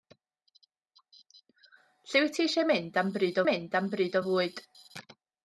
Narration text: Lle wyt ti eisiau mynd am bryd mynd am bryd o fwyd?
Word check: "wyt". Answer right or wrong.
right